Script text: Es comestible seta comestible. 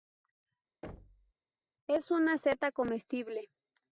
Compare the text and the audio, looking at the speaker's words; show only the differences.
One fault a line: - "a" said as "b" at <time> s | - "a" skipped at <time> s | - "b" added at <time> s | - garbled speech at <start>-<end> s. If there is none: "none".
- "comestible" said as "una" at 2.1 s